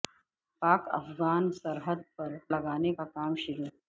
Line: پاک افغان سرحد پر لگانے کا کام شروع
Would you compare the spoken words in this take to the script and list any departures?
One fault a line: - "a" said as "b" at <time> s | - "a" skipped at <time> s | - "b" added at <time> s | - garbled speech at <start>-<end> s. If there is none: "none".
none